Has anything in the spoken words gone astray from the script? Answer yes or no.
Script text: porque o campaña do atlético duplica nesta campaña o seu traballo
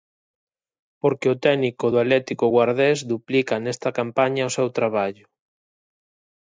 yes